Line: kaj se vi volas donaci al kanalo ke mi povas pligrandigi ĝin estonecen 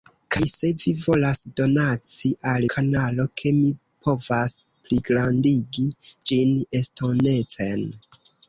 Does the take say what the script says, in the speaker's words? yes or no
yes